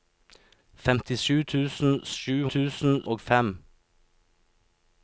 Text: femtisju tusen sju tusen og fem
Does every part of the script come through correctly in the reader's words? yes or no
yes